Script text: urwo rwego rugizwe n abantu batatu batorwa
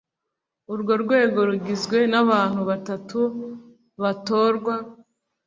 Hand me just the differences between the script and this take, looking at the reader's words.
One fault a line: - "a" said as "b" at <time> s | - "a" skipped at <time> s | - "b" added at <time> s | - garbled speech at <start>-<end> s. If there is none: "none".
none